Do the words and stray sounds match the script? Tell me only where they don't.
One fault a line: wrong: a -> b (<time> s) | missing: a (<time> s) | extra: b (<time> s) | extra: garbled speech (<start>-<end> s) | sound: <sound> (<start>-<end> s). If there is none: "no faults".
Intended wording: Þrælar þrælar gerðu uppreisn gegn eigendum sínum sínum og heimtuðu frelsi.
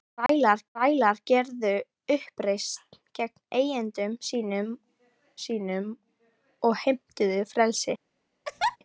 sound: dropout (0.3-0.3 s)
sound: laugh (8.4-8.8 s)